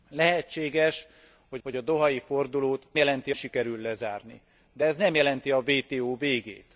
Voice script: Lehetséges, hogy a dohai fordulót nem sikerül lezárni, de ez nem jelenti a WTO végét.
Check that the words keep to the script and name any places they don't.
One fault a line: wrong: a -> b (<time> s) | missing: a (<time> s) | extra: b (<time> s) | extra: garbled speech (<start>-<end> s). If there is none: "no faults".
extra: hogy (1.6 s)
wrong: nem -> jelenti (2.9 s)